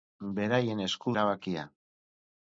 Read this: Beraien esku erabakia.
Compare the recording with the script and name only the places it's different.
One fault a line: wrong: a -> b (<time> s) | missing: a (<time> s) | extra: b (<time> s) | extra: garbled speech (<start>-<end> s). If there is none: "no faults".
no faults